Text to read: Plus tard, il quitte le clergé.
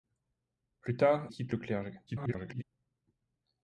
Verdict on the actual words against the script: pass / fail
fail